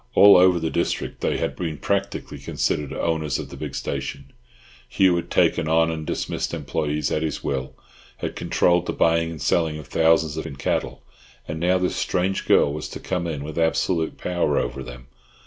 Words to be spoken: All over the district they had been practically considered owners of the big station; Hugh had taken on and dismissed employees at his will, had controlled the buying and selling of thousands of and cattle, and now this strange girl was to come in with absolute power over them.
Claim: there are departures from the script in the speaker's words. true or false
false